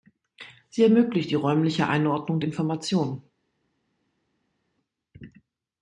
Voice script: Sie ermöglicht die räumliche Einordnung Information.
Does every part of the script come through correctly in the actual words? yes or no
yes